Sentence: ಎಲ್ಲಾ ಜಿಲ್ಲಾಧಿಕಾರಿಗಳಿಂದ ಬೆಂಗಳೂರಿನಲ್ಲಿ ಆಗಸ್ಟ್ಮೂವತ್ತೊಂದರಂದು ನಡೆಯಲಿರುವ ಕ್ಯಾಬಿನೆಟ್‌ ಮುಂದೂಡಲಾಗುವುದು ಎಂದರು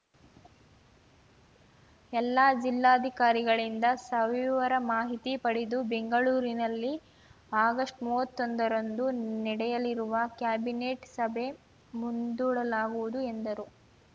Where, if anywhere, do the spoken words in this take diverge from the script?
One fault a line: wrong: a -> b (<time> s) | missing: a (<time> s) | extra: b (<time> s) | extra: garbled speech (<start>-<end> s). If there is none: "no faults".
extra: ಸವಿವರ ಮಾಹಿತಿ ಪಡೆದು (4.0 s)
extra: ಸಭೆ (11.2 s)